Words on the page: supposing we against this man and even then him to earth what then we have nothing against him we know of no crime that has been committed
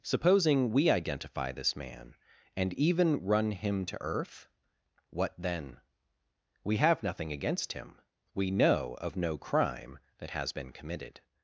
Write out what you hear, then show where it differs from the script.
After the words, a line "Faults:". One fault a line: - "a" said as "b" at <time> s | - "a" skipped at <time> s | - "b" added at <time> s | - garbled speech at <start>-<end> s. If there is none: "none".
supposing we identify this man and even run him to earth what then we have nothing against him we know of no crime that has been committed
Faults:
- "against" said as "identify" at 0.9 s
- "then" said as "run" at 3.2 s